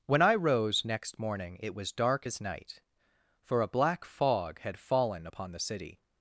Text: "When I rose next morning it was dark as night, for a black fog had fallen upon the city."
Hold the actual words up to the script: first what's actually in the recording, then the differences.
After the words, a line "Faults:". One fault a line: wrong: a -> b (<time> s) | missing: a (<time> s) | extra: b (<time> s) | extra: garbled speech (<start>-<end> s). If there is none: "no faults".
"When I rose next morning it was dark as night, for a black fog had fallen upon the city."
Faults:
no faults